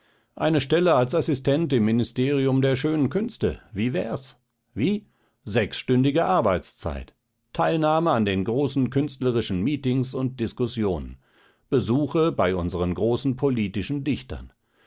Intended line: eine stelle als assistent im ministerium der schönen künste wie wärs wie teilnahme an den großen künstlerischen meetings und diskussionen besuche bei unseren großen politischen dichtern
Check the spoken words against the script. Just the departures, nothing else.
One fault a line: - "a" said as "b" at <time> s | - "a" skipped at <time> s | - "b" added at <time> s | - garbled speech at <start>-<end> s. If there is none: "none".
- "sechsstündige arbeitszeit" added at 5.4 s